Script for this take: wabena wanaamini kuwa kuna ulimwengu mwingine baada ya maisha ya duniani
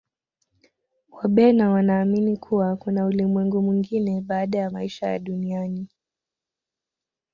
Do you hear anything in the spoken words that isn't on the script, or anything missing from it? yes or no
no